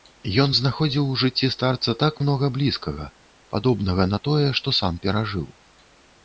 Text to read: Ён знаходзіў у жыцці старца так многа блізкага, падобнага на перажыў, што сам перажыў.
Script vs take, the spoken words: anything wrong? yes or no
yes